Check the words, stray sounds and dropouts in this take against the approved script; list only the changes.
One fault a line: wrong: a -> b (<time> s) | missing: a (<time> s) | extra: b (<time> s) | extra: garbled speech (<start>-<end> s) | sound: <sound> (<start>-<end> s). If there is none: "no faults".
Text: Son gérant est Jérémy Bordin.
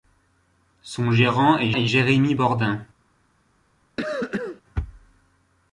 extra: est (1.7 s)
sound: cough (4.0-4.6 s)